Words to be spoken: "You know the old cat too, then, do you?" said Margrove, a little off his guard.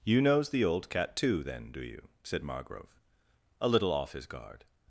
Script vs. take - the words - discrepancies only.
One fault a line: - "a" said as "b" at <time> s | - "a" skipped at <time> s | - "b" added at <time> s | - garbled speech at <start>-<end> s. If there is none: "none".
- "know" said as "knows" at 0.2 s